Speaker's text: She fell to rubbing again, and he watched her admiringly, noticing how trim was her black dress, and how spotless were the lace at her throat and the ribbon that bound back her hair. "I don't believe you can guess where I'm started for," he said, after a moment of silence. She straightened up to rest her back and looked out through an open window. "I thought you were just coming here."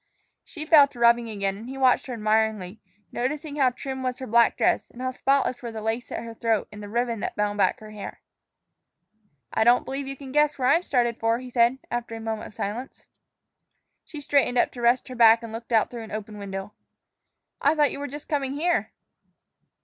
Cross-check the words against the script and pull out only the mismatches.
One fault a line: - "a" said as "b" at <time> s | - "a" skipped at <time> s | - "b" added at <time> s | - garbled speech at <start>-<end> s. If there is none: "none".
none